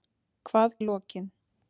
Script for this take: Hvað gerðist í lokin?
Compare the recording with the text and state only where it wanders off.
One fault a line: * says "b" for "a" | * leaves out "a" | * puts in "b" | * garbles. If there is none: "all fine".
* leaves out "gerðist"